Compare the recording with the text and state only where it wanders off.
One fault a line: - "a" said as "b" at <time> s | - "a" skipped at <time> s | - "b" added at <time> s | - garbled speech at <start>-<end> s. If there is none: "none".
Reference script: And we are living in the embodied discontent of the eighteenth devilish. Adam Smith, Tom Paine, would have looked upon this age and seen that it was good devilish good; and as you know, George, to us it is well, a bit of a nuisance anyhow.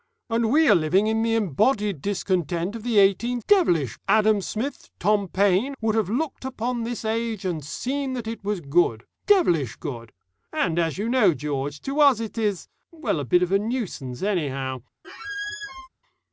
none